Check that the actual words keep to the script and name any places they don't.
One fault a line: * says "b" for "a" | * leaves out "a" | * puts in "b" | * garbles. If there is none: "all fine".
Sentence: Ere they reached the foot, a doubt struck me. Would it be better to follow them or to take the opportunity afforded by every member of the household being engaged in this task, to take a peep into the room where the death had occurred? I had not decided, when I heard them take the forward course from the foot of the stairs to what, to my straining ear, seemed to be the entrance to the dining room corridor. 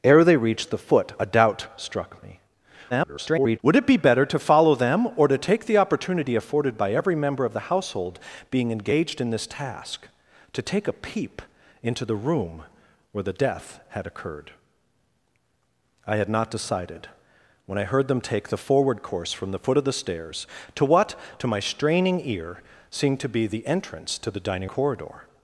* garbles
* leaves out "room"